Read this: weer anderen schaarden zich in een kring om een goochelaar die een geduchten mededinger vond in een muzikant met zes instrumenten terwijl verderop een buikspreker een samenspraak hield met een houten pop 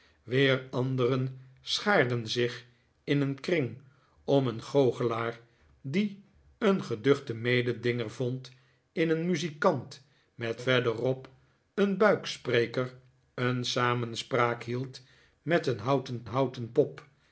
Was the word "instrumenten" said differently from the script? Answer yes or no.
yes